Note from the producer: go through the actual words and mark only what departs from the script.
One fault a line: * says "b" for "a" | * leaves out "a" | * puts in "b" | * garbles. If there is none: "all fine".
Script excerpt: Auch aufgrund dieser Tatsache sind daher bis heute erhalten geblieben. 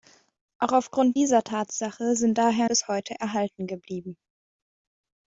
all fine